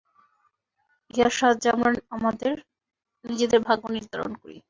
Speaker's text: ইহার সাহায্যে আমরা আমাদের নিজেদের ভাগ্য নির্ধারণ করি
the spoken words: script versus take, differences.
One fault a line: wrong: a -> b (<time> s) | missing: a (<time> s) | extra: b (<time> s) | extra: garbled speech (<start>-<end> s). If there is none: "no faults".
no faults